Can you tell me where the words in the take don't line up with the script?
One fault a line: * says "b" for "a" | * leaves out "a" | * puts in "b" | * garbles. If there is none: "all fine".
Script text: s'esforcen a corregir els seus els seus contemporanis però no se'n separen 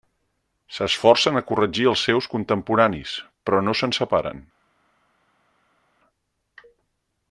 * leaves out "els seus"